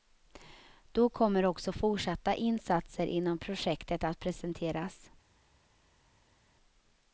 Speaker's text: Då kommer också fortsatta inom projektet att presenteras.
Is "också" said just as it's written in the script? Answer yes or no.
yes